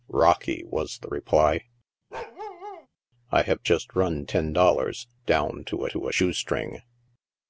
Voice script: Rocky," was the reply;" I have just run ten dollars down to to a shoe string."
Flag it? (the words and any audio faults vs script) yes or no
yes